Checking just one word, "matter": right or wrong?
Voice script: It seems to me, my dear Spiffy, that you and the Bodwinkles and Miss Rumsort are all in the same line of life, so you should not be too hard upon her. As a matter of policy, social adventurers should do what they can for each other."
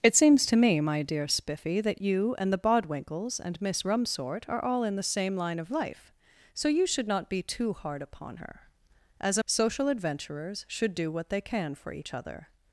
wrong